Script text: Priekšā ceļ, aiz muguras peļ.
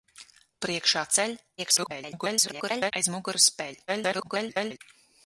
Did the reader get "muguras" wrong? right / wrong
right